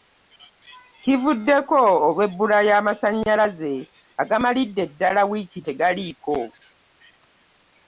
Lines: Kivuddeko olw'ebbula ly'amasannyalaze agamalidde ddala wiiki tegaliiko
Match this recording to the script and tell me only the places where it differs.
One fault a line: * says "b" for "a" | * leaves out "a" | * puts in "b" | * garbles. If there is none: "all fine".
all fine